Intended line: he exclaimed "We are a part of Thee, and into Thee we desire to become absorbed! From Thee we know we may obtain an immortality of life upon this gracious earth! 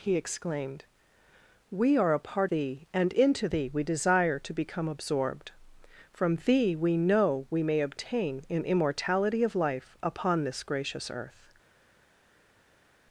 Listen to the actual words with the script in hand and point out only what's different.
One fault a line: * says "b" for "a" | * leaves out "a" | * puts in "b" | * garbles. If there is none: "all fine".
* leaves out "of"